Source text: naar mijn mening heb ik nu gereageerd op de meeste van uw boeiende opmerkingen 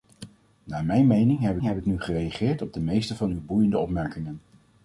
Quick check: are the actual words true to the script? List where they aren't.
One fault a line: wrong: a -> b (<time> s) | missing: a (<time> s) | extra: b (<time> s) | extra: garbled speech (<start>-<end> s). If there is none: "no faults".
extra: heb (1.6 s)